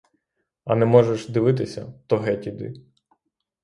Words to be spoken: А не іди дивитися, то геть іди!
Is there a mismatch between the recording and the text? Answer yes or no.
yes